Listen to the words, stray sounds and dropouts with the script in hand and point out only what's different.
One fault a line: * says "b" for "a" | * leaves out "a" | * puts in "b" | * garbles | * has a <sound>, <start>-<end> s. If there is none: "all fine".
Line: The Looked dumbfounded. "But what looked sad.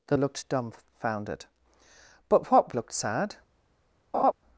* has a laugh, 4.1-4.3 s